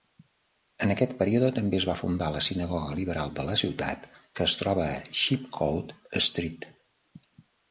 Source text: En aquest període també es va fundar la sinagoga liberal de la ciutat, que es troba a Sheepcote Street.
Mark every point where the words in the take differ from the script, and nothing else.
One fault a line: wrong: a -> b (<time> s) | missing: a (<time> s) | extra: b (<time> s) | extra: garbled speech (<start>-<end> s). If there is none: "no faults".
no faults